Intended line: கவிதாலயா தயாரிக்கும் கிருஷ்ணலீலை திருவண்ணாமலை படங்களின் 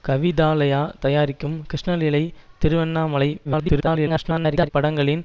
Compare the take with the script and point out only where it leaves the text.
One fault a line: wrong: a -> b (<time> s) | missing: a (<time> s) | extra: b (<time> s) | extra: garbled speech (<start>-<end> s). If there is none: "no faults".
extra: garbled speech (3.4-4.7 s)